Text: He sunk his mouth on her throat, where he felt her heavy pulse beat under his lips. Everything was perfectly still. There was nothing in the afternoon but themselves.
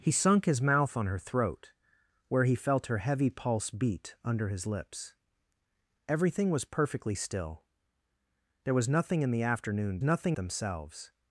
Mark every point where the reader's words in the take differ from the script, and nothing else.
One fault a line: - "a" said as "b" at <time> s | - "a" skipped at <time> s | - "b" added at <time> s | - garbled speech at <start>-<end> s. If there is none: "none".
- "but" said as "nothing" at 10.0 s